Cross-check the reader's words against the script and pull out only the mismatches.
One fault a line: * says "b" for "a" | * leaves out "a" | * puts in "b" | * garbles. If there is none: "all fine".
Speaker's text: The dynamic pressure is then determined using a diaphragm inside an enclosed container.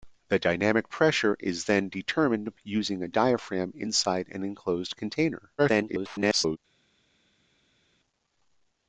* garbles